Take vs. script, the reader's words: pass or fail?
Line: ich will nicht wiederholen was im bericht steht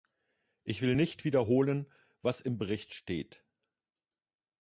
pass